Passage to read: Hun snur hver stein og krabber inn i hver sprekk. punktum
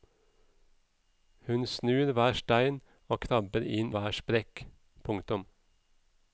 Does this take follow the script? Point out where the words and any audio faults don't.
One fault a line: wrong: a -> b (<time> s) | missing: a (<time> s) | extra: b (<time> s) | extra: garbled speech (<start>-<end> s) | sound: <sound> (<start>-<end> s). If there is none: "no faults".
missing: i (3.9 s)